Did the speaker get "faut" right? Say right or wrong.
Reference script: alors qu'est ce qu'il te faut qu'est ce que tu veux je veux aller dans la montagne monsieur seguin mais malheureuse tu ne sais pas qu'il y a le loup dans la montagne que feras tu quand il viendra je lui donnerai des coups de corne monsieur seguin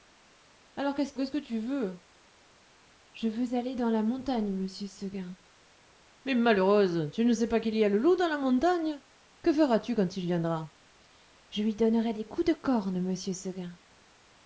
wrong